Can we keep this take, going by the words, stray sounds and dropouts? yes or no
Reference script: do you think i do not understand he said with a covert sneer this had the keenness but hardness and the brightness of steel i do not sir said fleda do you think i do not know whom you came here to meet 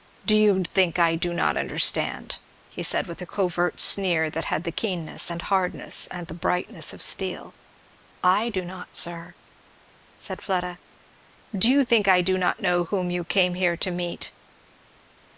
no